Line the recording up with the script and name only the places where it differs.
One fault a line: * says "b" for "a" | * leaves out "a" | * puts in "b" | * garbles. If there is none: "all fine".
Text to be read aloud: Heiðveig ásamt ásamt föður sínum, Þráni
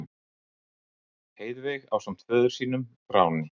* leaves out "ásamt"